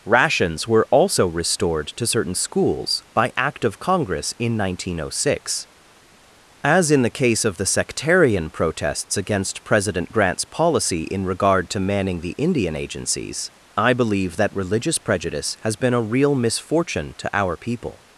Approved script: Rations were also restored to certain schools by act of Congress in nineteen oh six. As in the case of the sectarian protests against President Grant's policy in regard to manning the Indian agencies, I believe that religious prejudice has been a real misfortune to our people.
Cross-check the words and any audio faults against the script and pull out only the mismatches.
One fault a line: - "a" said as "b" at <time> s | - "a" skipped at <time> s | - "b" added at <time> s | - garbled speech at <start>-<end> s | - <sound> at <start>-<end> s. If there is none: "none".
none